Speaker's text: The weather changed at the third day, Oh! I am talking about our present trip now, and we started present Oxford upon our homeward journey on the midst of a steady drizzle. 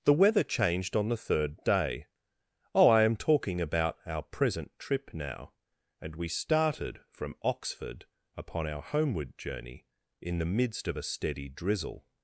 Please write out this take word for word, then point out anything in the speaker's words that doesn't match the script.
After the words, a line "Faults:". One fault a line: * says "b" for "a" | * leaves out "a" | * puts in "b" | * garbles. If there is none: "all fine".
The weather changed on the third day, Oh! I am talking about our present trip now, and we started from Oxford upon our homeward journey in the midst of a steady drizzle.
Faults:
* says "on" for "at"
* says "from" for "present"
* says "in" for "on"